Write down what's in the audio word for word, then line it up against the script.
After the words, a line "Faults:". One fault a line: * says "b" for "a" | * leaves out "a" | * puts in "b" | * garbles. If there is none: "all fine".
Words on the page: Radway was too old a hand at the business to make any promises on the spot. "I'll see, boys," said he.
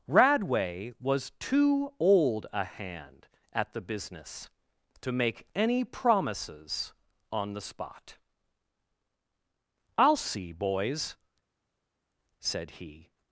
Radway was too old a hand at the business to make any promises on the spot. "I'll see, boys," said he.
Faults:
all fine